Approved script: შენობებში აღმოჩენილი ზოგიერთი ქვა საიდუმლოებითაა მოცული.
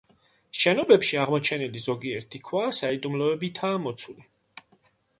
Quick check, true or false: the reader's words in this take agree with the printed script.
true